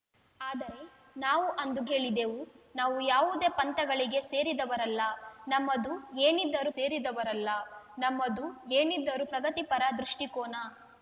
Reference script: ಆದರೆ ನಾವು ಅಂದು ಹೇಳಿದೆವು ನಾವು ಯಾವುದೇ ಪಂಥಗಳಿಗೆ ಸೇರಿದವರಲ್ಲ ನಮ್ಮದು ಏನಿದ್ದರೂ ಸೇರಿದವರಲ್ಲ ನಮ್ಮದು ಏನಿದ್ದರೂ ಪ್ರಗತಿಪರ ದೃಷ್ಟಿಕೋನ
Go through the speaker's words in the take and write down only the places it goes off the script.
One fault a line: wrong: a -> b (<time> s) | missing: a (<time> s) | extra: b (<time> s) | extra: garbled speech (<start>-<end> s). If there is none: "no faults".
no faults